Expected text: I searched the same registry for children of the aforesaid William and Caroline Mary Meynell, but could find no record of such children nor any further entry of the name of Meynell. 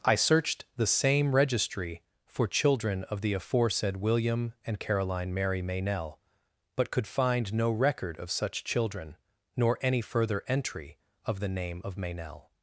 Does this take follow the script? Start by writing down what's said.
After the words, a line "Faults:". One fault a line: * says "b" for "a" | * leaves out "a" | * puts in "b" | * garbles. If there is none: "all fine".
I searched the same registry for children of the aforesaid William and Caroline Mary Meynell, but could find no record of such children nor any further entry of the name of Meynell.
Faults:
all fine